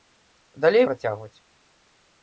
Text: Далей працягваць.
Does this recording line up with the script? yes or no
yes